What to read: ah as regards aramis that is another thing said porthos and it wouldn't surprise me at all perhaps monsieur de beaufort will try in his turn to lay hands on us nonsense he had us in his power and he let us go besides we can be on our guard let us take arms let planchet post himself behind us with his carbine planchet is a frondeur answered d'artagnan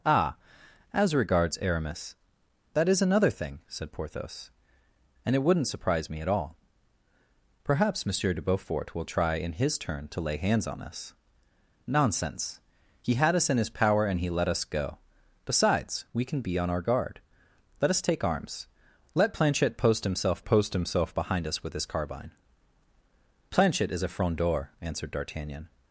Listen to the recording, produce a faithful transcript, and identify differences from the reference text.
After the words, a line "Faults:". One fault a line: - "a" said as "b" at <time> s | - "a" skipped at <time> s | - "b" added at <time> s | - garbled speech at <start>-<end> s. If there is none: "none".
ah as regards aramis that is another thing said porthos and it wouldn't surprise me at all perhaps monsieur de beaufort will try in his turn to lay hands on us nonsense he had us in his power and he let us go besides we can be on our guard let us take arms let planchet post himself post himself behind us with his carbine planchet is a frondeur answered d'artagnan
Faults:
- "post himself" added at 20.4 s